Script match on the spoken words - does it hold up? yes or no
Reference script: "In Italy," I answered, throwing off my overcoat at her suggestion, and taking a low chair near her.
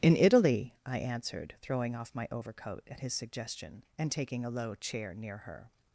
no